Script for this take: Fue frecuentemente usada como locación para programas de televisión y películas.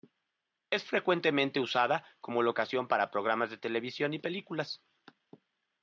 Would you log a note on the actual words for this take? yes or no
yes